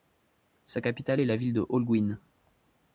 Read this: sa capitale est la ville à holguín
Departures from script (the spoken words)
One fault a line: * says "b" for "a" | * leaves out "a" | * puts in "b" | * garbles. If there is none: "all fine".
* says "de" for "à"